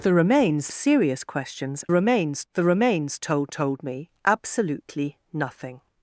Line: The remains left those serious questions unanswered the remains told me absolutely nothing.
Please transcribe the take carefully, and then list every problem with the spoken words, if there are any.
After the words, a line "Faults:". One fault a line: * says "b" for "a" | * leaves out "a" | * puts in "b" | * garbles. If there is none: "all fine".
The remains serious questions remains the remains told told me absolutely nothing.
Faults:
* leaves out "left those"
* says "remains" for "unanswered"
* puts in "told"